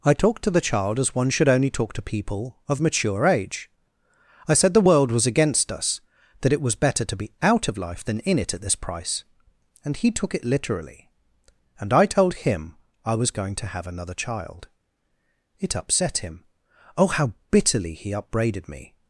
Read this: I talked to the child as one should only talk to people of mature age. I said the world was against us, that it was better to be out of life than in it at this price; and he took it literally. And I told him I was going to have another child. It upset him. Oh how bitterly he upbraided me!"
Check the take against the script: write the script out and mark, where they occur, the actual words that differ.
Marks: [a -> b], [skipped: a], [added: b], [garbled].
I talked to the child as one should only talk to people of mature age. I said the world was against us, that it was better to be out of life than in it at this price; and he took it literally. And I told him I was going to have another child. It upset him. Oh how bitterly he upbraided me!"